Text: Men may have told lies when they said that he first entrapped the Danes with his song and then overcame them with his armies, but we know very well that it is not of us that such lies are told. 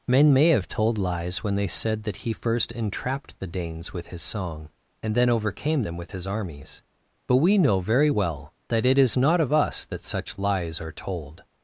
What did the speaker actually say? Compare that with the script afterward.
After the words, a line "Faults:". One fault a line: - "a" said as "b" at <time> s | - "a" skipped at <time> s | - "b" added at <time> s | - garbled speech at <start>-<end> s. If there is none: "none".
Men may have told lies when they said that he first entrapped the Danes with his song and then overcame them with his armies, but we know very well that it is not of us that such lies are told.
Faults:
none